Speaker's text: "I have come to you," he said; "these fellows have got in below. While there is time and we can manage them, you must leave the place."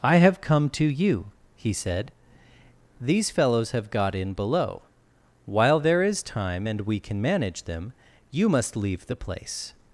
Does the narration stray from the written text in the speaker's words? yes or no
no